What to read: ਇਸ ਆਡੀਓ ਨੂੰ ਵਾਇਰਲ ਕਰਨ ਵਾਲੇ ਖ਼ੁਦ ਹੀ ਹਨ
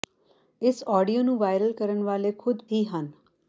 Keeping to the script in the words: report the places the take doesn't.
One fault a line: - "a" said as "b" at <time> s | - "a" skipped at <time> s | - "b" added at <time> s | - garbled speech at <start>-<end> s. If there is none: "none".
none